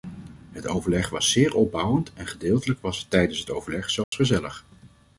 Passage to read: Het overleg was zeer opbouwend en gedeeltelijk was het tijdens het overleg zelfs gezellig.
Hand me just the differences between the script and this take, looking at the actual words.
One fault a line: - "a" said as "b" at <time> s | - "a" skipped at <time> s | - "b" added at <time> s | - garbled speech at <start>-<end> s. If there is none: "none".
none